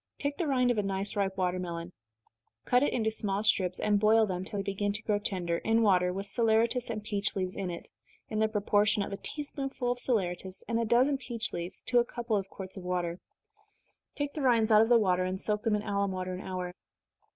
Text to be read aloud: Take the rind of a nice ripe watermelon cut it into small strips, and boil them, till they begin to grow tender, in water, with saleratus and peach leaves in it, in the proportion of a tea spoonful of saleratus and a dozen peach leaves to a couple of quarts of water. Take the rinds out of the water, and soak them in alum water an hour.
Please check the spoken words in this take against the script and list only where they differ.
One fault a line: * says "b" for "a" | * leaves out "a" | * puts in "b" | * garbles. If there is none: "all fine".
all fine